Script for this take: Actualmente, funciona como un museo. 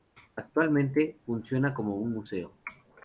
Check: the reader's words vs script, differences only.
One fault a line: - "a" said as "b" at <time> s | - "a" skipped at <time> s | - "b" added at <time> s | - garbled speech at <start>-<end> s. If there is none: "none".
none